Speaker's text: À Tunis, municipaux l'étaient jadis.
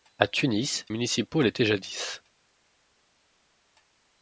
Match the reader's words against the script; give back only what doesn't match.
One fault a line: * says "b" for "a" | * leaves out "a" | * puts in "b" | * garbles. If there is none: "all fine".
all fine